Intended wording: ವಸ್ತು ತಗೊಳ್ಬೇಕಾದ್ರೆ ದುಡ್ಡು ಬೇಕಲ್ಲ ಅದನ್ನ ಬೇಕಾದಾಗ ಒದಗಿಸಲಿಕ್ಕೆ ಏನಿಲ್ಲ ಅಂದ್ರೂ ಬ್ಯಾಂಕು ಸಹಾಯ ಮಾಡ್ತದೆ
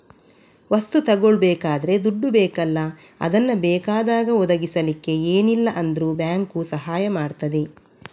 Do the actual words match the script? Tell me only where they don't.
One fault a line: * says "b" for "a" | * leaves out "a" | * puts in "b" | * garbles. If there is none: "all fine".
all fine